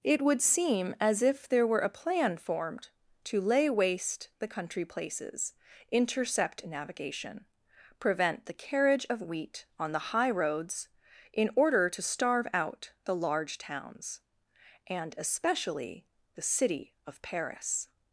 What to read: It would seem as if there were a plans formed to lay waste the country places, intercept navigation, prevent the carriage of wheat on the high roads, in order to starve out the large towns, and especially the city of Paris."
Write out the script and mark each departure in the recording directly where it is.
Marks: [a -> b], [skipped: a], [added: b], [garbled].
It would seem as if there were a [plans -> plan] formed to lay waste the country places, intercept navigation, prevent the carriage of wheat on the high roads, in order to starve out the large towns, and especially the city of Paris."